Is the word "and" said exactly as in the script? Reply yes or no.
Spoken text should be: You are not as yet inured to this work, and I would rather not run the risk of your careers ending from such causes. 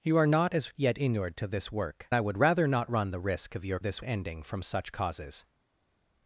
no